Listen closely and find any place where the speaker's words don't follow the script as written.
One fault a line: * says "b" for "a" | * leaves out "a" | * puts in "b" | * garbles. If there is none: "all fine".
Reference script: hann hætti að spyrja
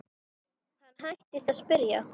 all fine